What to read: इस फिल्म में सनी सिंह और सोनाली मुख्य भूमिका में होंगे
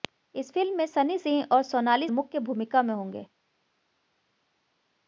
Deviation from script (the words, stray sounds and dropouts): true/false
false